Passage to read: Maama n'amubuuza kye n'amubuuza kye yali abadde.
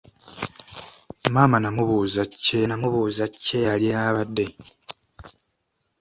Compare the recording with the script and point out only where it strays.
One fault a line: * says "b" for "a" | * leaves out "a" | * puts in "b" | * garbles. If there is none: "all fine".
all fine